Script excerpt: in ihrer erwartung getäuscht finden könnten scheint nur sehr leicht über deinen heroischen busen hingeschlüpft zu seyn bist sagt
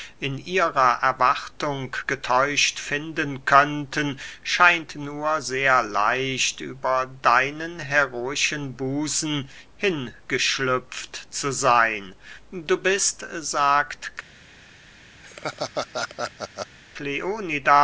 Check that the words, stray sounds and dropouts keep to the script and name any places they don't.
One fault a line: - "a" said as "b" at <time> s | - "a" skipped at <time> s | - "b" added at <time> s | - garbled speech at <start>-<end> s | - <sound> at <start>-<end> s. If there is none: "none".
- "du" added at 12.5 s
- laugh at 15.2-16.8 s